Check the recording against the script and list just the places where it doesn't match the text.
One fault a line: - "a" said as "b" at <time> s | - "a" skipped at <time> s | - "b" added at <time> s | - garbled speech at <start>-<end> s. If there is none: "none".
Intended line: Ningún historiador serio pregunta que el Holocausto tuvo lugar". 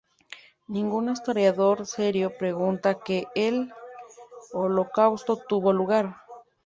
none